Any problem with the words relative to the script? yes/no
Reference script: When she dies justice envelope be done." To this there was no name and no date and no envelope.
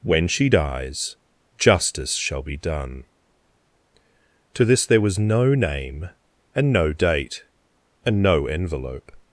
yes